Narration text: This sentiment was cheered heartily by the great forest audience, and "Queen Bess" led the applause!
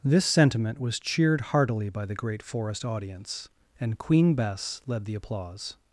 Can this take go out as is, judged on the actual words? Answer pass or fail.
pass